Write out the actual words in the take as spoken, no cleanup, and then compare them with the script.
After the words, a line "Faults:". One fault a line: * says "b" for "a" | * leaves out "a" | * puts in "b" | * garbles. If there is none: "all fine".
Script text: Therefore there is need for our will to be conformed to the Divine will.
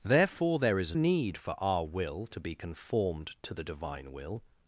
Therefore there is need for our will to be conformed to the Divine will.
Faults:
all fine